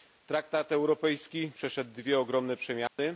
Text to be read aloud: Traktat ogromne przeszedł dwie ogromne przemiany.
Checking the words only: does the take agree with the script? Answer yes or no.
no